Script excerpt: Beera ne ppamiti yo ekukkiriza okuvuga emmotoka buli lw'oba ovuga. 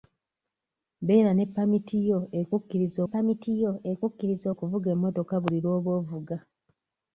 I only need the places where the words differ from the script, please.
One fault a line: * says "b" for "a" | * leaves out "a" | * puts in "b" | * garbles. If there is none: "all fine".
* puts in "ppamiti yo ekukkiriza"